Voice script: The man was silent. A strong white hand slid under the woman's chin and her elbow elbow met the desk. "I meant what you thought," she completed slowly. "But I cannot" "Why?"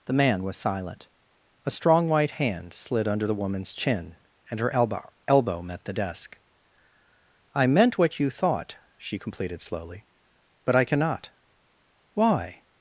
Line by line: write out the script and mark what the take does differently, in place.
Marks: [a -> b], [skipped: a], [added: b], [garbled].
The man was silent. A strong white hand slid under the woman's chin and her elbow elbow met the desk. "I meant what you thought," she completed slowly. "But I cannot" "Why?"